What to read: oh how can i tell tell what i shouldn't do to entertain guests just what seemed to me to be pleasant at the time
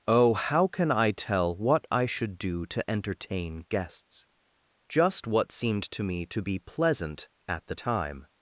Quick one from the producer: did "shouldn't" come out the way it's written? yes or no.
no